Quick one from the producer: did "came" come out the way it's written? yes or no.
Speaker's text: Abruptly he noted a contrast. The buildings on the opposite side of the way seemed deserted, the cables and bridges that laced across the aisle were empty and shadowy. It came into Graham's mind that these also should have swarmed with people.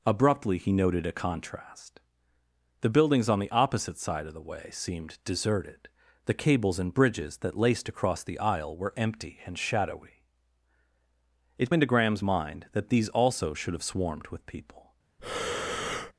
no